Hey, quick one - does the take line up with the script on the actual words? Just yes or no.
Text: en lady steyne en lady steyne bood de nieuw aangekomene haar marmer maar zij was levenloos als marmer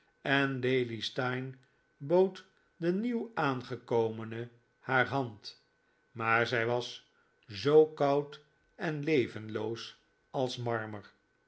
no